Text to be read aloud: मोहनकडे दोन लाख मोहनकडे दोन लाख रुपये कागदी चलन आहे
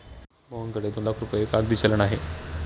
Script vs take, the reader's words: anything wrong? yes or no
yes